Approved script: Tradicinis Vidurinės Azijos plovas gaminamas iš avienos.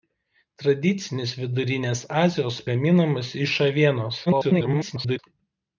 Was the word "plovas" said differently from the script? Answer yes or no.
yes